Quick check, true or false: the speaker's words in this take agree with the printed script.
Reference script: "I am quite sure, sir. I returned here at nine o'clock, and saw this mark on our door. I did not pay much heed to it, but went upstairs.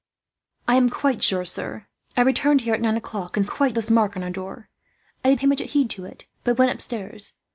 false